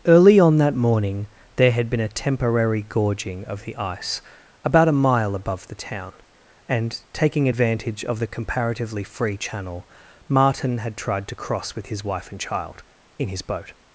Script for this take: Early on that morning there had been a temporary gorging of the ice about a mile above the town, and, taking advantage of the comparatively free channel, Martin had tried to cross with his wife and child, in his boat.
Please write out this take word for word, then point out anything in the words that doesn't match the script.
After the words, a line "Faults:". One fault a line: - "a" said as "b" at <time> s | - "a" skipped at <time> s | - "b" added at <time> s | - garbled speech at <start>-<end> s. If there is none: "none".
Early on that morning there had been a temporary gorging of the ice about a mile above the town, and, taking advantage of the comparatively free channel, Martin had tried to cross with his wife and child, in his boat.
Faults:
none